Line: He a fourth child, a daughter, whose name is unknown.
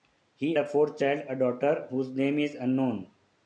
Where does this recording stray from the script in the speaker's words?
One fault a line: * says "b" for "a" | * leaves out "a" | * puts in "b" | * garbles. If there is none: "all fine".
all fine